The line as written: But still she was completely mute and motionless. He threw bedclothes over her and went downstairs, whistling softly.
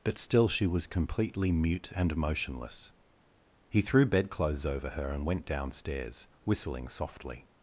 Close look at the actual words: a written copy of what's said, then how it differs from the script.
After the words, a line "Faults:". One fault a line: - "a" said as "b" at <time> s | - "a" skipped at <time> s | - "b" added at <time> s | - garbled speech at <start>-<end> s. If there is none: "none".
But still she was completely mute and motionless. He threw bedclothes over her and went downstairs, whistling softly.
Faults:
none